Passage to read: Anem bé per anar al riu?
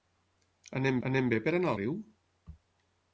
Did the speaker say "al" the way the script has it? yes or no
no